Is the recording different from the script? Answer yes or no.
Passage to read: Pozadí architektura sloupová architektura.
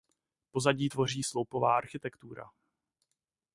yes